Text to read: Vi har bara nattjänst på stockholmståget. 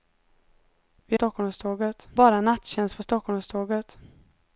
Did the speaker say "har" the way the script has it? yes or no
no